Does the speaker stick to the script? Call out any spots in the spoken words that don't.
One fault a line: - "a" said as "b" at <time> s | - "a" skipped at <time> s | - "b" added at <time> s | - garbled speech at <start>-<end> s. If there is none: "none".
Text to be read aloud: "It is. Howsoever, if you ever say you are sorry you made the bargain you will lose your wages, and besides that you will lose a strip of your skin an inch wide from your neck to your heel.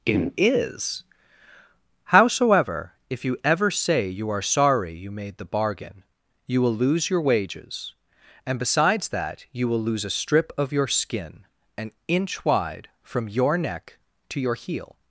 none